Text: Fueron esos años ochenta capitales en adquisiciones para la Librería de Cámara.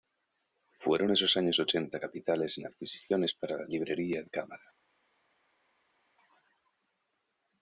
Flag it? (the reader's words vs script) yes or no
no